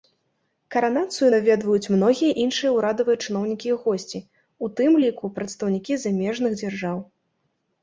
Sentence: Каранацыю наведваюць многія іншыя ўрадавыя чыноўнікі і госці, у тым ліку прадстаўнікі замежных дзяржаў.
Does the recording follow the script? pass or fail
pass